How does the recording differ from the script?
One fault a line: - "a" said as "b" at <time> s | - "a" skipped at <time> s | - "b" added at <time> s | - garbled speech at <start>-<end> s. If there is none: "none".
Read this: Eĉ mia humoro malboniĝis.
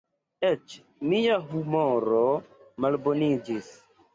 none